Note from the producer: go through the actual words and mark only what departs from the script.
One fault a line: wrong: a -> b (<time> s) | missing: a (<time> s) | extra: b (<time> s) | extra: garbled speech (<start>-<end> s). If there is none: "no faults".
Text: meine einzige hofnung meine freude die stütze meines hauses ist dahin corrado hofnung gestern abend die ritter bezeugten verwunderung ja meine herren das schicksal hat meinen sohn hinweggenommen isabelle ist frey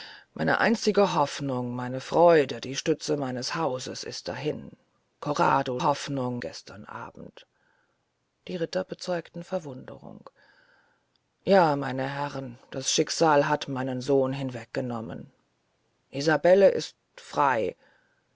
no faults